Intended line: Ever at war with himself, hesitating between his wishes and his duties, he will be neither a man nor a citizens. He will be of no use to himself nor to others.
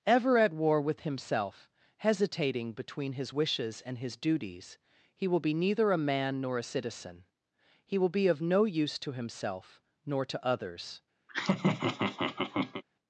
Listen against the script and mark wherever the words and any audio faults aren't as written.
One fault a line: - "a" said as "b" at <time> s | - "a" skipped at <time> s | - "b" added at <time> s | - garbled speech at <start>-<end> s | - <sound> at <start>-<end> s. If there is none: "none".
- "citizens" said as "citizen" at 6.7 s
- laugh at 11.3-12.8 s